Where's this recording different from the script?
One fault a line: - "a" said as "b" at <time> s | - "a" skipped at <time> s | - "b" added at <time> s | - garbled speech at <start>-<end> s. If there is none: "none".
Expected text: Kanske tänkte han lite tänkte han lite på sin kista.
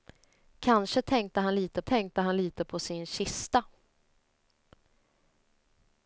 none